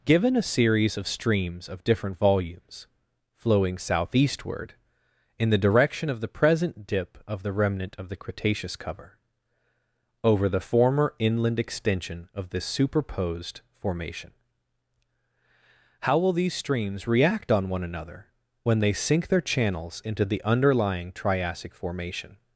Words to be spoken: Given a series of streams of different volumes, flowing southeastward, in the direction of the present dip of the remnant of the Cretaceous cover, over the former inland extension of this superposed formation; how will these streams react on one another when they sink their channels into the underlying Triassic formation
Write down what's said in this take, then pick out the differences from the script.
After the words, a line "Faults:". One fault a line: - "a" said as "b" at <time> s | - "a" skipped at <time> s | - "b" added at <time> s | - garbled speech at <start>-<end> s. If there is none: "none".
Given a series of streams of different volumes, flowing southeastward, in the direction of the present dip of the remnant of the Cretaceous cover, over the former inland extension of this superposed formation; how will these streams react on one another when they sink their channels into the underlying Triassic formation
Faults:
none